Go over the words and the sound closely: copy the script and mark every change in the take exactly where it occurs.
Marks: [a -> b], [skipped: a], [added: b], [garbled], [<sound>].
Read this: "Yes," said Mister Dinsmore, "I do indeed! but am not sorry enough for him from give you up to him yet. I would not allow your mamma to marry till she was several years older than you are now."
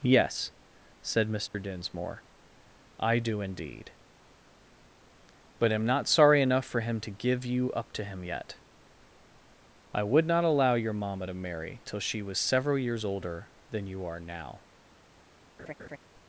"Yes," said Mister [dropout] Dinsmore, "I do indeed! but am not sorry enough for him [from -> to] give you up to him yet. I would not allow your mamma to marry till she was several years older than you are now." [laugh]